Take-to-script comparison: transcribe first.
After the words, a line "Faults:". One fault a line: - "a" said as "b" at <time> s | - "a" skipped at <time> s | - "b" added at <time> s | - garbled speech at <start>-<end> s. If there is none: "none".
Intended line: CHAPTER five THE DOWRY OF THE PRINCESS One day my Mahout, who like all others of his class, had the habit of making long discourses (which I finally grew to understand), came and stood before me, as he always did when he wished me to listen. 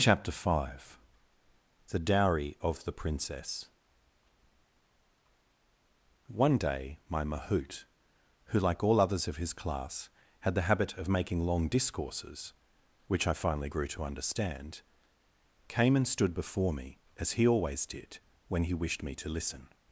CHAPTER five THE DOWRY OF THE PRINCESS One day my Mahout, who like all others of his class, had the habit of making long discourses (which I finally grew to understand), came and stood before me, as he always did when he wished me to listen.
Faults:
none